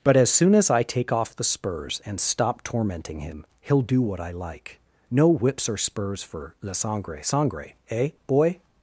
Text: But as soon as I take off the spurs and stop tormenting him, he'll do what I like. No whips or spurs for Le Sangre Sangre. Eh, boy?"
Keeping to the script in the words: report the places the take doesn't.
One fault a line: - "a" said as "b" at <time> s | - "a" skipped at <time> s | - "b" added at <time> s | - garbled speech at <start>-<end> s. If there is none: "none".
none